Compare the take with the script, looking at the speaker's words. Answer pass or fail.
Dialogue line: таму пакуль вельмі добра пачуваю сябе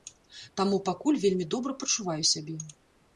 pass